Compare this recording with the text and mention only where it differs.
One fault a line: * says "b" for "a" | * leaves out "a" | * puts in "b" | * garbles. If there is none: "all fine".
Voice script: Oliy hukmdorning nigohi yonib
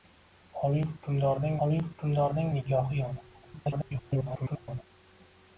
* puts in "oliy hukmdorning"
* garbles